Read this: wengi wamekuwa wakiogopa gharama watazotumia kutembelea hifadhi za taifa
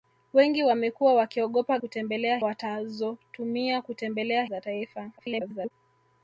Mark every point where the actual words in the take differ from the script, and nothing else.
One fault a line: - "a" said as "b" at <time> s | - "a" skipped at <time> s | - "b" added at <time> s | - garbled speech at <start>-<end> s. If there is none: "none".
- "gharama" said as "kutembelea" at 1.7 s
- "hifadhi" skipped at 4.4 s
- garbled speech at 5.2-5.7 s